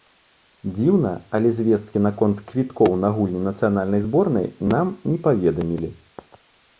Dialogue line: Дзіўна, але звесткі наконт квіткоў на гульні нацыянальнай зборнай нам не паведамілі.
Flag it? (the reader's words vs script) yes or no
no